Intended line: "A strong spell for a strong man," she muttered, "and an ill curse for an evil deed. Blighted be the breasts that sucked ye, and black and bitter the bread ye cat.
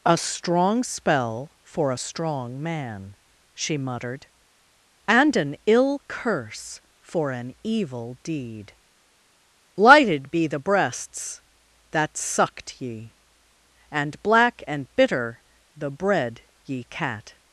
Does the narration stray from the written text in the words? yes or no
yes